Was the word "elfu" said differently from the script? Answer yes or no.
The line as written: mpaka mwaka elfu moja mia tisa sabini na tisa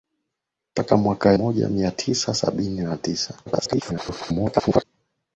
yes